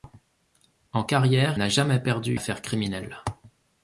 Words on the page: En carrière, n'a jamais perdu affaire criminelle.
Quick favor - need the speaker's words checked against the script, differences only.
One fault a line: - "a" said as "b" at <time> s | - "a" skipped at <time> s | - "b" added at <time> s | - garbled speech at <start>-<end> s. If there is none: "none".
none